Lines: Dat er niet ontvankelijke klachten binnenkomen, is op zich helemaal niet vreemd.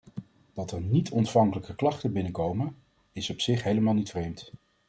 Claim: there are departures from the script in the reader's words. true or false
false